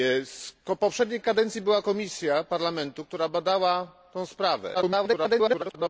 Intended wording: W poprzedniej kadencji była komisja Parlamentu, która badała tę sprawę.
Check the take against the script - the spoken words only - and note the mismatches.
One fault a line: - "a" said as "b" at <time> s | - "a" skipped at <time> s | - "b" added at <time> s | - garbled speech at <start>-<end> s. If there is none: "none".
- garbled speech at 4.7-5.9 s